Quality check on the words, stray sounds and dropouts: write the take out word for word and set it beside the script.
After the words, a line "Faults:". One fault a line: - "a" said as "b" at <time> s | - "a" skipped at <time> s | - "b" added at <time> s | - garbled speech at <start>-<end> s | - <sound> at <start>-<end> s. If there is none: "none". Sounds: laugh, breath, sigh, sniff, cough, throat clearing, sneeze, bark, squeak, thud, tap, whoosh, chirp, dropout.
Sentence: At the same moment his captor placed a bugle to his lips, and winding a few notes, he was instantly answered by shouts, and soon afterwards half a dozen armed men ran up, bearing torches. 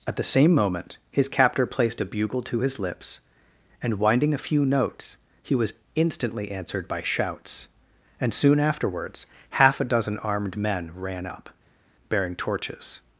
At the same moment his captor placed a bugle to his lips, and winding a few notes, he was instantly answered by shouts, and soon afterwards half a dozen armed men ran up, bearing torches.
Faults:
none